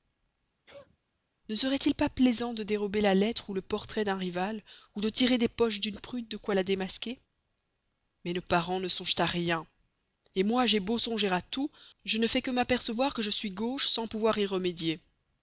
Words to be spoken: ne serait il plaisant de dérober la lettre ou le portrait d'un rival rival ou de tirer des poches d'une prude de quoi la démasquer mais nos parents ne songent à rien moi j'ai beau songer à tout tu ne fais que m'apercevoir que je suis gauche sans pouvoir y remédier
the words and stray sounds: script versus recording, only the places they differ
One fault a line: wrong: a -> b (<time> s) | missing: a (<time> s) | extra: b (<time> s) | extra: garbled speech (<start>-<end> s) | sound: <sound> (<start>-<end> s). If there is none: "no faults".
sound: sneeze (0.7-1.0 s)
extra: pas (1.9 s)
missing: rival (4.6 s)
wrong: tu -> je (12.0 s)